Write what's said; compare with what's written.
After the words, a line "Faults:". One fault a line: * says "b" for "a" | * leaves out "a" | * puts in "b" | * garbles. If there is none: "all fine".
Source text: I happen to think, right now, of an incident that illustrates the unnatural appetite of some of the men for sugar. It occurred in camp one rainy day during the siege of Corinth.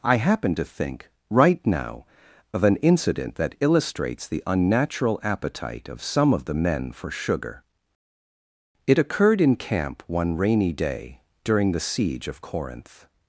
I happen to think, right now, of an incident that illustrates the unnatural appetite of some of the men for sugar. It occurred in camp one rainy day during the siege of Corinth.
Faults:
all fine